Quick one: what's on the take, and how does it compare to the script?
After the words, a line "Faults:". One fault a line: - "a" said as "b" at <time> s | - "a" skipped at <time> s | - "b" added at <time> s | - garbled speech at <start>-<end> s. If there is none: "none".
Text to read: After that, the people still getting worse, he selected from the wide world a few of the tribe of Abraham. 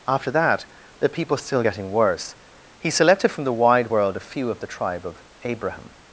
After that, the people still getting worse, he selected from the wide world a few of the tribe of Abraham.
Faults:
none